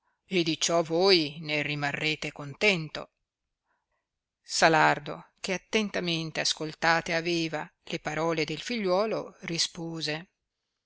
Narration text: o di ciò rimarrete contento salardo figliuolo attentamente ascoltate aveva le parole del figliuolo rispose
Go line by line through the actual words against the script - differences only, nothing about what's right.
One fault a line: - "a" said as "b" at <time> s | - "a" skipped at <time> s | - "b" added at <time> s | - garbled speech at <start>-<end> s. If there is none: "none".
- "o" said as "e" at 0.2 s
- "voi ne" added at 0.8 s
- "figliuolo" said as "che" at 5.4 s